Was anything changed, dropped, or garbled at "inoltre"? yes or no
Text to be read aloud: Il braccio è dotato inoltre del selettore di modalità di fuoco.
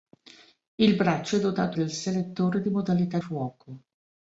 yes